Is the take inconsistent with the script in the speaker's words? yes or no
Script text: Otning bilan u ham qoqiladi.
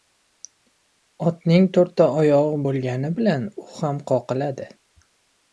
yes